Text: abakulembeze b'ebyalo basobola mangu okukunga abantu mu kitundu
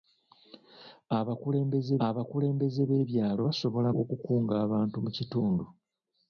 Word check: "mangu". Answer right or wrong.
wrong